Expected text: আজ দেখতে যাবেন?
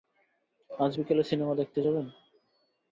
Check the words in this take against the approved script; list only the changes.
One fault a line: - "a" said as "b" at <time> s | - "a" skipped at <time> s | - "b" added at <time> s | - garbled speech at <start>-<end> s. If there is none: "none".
- "বিকেলে সিনেমা" added at 1.0 s